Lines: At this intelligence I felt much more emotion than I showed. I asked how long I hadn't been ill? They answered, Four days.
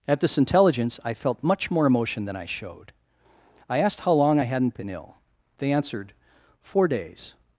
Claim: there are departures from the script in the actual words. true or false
false